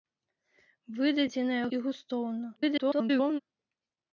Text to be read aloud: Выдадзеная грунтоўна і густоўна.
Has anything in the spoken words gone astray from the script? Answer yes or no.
yes